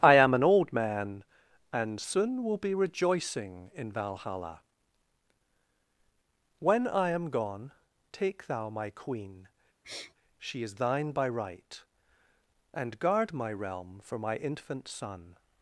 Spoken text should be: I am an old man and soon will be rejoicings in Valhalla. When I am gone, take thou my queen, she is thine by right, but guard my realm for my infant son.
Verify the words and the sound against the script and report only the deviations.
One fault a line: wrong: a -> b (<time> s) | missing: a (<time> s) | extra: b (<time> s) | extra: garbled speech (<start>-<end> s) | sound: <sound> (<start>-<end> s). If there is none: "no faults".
wrong: rejoicings -> rejoicing (2.7 s)
sound: sniff (9.8-10.1 s)
wrong: but -> and (12.7 s)